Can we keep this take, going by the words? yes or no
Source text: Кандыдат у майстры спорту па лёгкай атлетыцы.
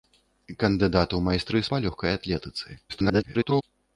no